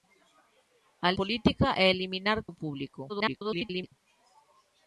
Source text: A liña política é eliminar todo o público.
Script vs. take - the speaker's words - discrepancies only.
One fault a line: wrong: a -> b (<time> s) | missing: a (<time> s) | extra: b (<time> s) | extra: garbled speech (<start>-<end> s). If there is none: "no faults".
missing: liña (1.1 s)
missing: todo (2.4 s)
extra: garbled speech (3.1-3.9 s)